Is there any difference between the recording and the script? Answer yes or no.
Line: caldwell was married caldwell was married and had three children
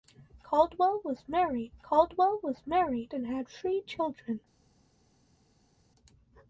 no